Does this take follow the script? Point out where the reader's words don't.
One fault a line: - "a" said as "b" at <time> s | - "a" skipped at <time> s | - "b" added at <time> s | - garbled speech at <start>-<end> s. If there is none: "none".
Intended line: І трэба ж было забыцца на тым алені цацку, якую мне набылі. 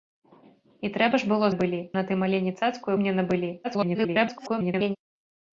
- "забыцца" said as "набылі" at 1.5 s
- "якую" skipped at 2.9 s
- garbled speech at 3.6-5.0 s